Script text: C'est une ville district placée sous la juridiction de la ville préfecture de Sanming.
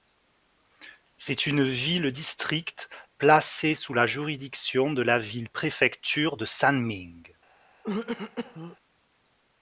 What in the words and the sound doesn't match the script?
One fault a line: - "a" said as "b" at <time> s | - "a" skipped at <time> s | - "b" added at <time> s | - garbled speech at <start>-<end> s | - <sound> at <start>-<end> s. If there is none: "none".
- throat clearing at 7.8-8.8 s